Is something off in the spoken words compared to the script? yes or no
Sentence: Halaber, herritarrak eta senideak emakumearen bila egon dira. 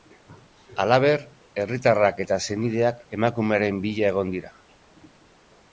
no